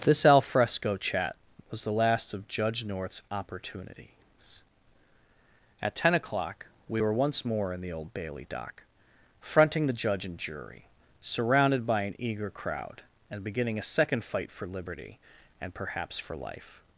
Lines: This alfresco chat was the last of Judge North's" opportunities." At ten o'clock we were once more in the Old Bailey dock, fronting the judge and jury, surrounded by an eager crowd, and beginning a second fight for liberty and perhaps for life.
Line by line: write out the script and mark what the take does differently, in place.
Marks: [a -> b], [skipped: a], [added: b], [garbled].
This alfresco chat was the last of Judge North's" opportunities." At ten o'clock we were once more in the Old Bailey dock, fronting the judge and jury, surrounded by an eager crowd, and beginning a second fight for liberty and perhaps for life.